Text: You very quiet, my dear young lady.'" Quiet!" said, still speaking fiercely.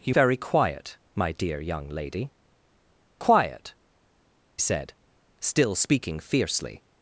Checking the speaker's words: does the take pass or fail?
pass